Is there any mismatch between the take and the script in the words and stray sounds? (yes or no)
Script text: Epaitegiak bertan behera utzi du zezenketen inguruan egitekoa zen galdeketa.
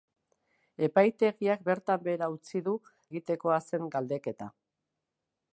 yes